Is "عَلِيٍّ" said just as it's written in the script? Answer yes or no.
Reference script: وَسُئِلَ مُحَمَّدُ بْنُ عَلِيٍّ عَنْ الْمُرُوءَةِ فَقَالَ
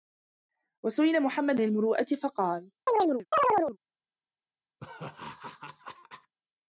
no